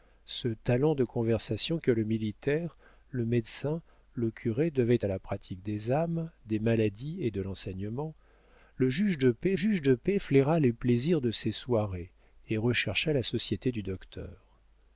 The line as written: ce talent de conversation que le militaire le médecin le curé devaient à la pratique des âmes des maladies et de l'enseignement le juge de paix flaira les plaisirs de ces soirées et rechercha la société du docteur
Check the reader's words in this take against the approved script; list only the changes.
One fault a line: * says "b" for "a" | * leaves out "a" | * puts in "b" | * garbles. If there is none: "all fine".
* puts in "juge de paix"